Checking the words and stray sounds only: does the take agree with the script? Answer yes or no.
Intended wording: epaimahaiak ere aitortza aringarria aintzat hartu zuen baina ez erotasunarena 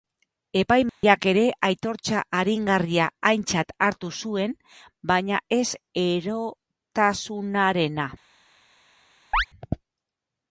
no